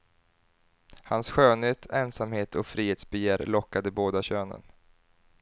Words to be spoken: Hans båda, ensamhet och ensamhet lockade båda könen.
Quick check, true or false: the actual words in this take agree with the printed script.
false